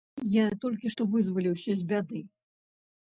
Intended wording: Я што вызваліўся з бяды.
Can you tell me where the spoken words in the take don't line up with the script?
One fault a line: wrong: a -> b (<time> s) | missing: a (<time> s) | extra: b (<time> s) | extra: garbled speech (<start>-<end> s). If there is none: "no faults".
extra: толькі (0.6 s)